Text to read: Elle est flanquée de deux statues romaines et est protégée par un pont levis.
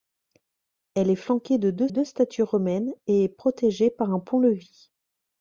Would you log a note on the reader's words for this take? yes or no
yes